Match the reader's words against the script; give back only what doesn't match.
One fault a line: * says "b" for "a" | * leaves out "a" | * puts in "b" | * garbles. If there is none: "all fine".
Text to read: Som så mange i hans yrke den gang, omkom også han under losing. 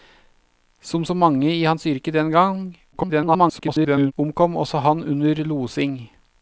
* garbles